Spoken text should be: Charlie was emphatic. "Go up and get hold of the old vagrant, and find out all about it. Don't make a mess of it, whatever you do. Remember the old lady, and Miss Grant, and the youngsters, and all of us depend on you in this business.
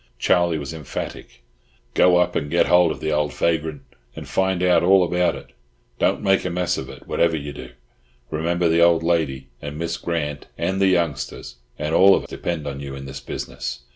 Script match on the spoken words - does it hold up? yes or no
no